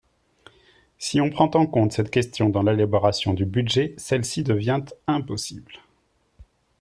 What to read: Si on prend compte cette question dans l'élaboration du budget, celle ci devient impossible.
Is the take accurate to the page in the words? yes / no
no